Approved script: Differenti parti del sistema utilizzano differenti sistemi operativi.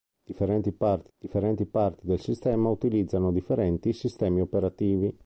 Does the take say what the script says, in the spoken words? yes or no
no